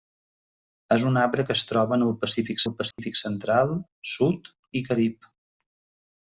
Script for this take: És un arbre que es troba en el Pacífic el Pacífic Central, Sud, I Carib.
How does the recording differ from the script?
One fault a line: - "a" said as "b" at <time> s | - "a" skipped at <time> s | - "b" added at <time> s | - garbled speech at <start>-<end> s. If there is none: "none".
none